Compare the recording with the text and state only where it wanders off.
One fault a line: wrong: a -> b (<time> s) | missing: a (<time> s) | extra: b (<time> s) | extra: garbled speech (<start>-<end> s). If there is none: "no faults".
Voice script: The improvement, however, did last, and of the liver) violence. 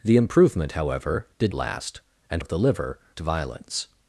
no faults